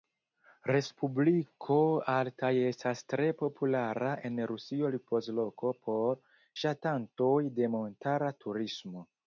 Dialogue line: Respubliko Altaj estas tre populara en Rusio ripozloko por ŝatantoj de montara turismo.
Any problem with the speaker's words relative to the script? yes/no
no